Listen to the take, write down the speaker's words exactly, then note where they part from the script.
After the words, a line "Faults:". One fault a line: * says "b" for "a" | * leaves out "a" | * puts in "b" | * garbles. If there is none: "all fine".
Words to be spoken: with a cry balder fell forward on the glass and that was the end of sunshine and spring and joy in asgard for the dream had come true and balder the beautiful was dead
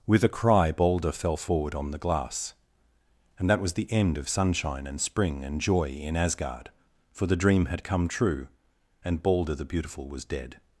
with a cry balder fell forward on the glass and that was the end of sunshine and spring and joy in asgard for the dream had come true and balder the beautiful was dead
Faults:
all fine